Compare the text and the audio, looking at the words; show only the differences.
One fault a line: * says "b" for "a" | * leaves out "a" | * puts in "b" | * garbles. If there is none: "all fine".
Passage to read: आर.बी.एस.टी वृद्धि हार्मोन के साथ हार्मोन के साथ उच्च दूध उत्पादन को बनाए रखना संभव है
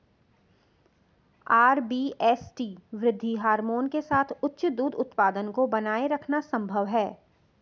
* leaves out "हार्मोन के साथ"